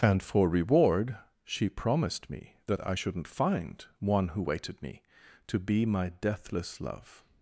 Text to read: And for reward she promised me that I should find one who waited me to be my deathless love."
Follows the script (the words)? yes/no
no